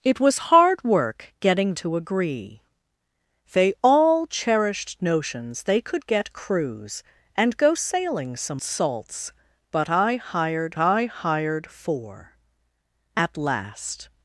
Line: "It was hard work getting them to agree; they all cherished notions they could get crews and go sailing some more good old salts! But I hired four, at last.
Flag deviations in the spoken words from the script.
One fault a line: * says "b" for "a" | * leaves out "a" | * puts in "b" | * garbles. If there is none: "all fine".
* leaves out "them"
* says "salts But I hired" for "more good old salts But"